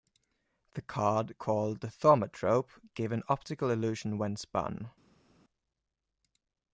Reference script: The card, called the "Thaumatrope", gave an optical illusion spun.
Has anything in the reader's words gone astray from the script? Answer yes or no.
yes